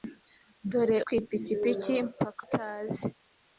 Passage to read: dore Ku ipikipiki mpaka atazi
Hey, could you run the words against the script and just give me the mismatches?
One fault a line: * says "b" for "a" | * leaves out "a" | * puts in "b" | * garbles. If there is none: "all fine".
all fine